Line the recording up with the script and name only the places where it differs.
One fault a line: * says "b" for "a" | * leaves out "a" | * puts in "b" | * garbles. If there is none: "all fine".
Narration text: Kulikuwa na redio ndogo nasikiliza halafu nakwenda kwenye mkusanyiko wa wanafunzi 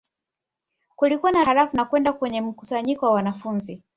* leaves out "redio ndogo nasikiliza"